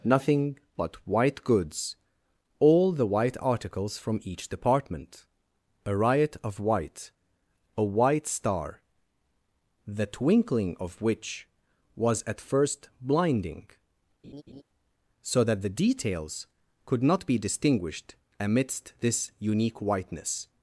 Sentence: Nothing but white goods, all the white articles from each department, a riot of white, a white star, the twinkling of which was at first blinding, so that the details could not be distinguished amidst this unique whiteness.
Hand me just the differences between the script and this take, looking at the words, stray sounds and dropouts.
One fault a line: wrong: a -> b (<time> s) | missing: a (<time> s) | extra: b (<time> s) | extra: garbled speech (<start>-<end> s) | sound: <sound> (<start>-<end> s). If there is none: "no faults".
sound: laugh (14.2-14.6 s)